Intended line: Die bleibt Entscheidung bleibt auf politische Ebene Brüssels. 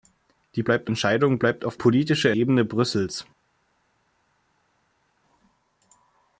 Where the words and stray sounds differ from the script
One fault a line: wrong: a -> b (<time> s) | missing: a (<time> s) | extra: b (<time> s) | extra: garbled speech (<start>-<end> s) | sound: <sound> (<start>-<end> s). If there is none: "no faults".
no faults